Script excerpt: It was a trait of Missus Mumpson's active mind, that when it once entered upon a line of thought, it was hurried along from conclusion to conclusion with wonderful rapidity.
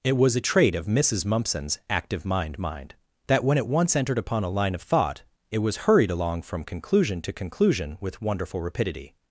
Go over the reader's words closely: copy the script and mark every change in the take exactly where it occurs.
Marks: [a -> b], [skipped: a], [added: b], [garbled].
It was a trait of Missus Mumpson's active mind, [added: mind] that when it once entered upon a line of thought, it was hurried along from conclusion to conclusion with wonderful rapidity.